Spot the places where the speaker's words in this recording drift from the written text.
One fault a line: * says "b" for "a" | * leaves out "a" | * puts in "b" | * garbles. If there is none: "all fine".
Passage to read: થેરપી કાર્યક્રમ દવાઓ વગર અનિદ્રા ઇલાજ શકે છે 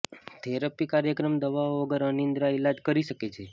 * puts in "કરી"